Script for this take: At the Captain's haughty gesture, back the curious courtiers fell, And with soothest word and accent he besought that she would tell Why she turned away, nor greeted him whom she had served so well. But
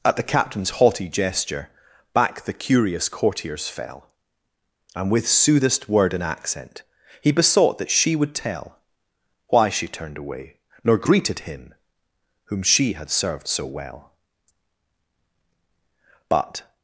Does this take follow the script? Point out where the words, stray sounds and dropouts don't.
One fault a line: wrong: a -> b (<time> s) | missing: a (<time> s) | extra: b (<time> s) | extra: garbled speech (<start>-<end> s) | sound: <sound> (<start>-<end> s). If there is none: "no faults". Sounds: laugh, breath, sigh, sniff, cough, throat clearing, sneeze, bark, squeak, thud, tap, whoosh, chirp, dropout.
no faults